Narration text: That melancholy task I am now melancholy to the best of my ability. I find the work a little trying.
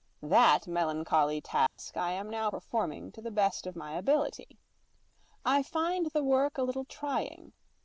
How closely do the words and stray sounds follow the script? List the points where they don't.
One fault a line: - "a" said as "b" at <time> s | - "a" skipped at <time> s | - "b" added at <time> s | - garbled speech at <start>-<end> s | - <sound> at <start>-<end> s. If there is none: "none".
- dropout at 1.7-1.8 s
- "melancholy" said as "performing" at 2.4 s